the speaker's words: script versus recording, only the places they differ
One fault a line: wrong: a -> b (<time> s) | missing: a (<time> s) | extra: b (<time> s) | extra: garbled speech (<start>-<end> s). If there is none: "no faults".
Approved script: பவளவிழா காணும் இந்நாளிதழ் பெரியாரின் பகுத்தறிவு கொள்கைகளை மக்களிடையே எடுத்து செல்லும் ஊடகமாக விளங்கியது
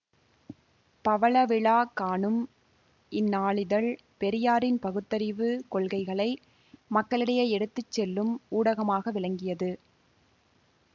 no faults